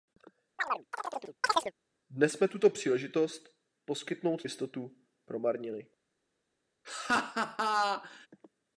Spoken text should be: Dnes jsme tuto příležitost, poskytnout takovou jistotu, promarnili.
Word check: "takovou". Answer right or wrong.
wrong